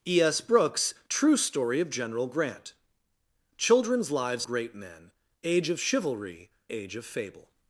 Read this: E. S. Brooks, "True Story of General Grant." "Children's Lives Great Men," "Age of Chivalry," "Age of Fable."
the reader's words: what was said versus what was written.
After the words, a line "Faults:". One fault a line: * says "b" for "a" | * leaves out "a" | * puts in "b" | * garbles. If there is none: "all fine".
E. S. Brooks, "True Story of General Grant." "Children's Lives Great Men," "Age of Chivalry," "Age of Fable."
Faults:
all fine